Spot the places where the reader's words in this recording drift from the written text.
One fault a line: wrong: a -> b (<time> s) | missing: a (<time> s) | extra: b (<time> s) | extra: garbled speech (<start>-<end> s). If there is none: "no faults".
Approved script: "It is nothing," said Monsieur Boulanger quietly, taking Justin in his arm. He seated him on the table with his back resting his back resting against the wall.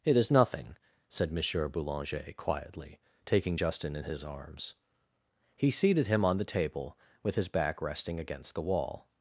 wrong: arm -> arms (4.2 s)
missing: his back resting (8.2 s)